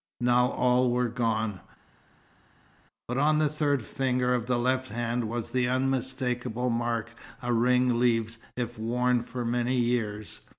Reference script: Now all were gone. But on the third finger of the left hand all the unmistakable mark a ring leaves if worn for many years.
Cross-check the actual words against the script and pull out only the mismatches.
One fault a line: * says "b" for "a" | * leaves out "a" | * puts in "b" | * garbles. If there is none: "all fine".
* says "was" for "all"